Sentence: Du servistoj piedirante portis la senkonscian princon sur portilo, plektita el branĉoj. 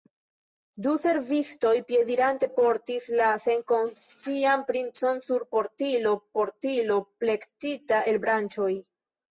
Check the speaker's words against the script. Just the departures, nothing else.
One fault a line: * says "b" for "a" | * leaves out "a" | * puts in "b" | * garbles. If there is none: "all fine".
* puts in "portilo"